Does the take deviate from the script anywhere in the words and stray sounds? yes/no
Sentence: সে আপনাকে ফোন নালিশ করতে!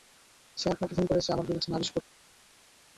yes